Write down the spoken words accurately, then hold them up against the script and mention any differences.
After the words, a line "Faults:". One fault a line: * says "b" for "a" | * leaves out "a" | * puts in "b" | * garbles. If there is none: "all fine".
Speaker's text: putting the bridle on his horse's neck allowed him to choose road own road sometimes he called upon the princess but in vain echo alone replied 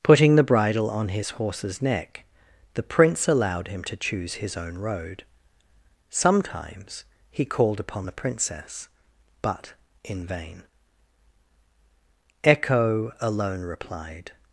putting the bridle on his horse's neck the prince allowed him to choose his own road sometimes he called upon the princess but in vain echo alone replied
Faults:
* puts in "the prince"
* says "his" for "road"